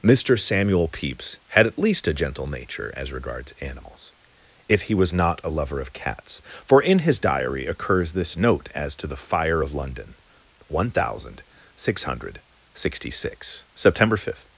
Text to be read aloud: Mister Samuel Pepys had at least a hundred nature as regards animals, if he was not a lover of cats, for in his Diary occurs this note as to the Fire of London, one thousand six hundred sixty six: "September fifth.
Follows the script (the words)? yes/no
no